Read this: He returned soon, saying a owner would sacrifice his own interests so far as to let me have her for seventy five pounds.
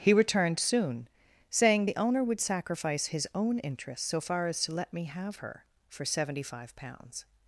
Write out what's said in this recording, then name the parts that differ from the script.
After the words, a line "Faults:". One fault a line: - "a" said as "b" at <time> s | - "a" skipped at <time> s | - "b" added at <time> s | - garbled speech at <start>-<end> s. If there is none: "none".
He returned soon, saying the owner would sacrifice his own interests so far as to let me have her for seventy five pounds.
Faults:
- "a" said as "the" at 1.8 s